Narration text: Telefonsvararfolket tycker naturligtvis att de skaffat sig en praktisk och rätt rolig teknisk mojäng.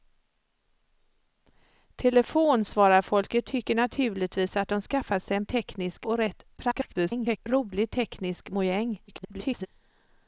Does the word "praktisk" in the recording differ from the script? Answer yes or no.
yes